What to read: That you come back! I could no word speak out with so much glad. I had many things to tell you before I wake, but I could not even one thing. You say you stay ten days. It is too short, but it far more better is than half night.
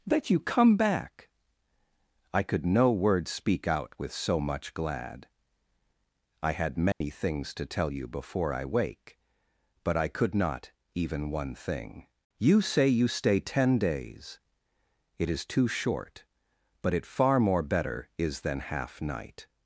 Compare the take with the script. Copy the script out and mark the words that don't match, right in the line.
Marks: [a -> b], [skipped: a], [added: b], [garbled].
That you come back! I could no word speak out with so much glad. I had many things to tell you before I wake, but I could not even one thing. You say you stay ten days. It is too short, but it far more better is than half night.